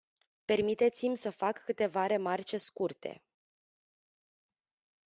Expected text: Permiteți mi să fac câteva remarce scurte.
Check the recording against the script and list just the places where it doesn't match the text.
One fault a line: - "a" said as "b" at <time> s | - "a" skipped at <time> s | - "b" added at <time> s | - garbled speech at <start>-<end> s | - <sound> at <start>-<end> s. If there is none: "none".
none